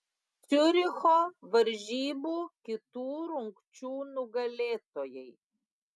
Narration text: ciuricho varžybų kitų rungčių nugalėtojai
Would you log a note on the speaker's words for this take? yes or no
no